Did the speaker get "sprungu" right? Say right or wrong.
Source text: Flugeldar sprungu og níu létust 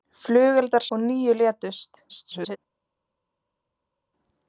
wrong